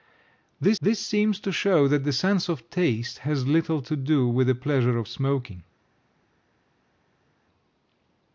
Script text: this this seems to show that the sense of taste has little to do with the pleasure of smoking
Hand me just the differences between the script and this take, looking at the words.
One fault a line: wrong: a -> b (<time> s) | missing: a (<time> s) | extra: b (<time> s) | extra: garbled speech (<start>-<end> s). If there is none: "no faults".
no faults